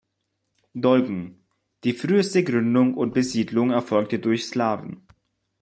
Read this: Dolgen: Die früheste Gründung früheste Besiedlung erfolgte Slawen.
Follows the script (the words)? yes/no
no